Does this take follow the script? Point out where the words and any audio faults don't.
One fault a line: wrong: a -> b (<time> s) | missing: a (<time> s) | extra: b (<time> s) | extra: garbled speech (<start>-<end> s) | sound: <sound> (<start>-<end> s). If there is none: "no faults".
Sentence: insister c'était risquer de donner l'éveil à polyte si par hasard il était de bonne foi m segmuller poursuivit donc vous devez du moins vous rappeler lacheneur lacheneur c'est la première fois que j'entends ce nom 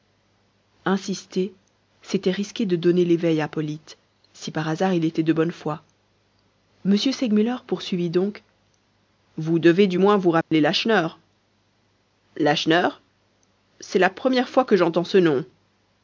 sound: dropout (10.4-10.5 s)